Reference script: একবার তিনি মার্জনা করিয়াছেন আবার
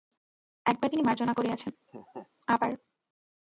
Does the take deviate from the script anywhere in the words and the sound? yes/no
yes